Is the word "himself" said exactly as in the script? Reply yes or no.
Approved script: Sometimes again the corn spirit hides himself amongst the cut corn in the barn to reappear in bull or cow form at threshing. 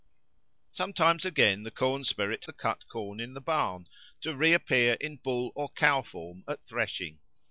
no